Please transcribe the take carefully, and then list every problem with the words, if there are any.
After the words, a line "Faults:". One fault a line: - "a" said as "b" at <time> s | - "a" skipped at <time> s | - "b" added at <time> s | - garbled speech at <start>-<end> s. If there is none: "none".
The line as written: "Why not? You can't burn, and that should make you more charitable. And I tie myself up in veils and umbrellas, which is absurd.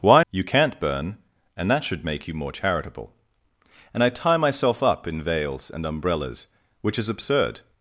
"Why? You can't burn, and that should make you more charitable. And I tie myself up in veils and umbrellas, which is absurd.
Faults:
- "not" skipped at 0.2 s